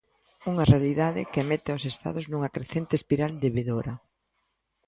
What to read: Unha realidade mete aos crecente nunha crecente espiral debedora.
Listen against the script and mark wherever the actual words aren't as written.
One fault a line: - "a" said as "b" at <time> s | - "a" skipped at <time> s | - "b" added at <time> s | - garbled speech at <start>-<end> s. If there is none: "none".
- "que" added at 1.3 s
- "crecente" said as "estados" at 1.9 s